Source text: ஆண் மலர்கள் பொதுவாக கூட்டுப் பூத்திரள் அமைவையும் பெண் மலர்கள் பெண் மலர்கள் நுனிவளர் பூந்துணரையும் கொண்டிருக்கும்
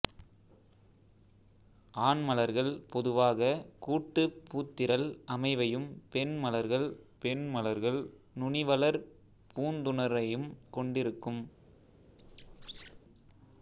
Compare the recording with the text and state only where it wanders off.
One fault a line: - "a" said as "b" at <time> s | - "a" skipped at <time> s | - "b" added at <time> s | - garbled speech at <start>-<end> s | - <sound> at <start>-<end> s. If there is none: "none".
- squeak at 12.2-13.0 s